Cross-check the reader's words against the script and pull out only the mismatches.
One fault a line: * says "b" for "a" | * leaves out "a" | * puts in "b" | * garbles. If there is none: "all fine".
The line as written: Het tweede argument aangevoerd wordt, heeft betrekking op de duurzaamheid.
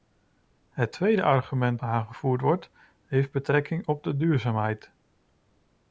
all fine